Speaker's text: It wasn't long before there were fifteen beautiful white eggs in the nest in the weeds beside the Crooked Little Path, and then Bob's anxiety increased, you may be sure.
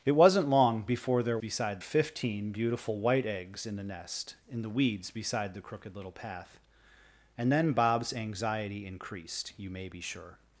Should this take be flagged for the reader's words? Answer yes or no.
yes